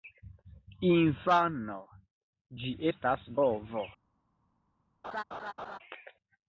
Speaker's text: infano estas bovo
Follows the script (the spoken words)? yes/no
no